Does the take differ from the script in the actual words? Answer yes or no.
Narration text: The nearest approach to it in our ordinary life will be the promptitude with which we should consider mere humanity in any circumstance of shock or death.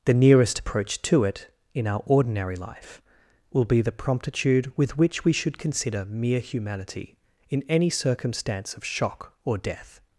no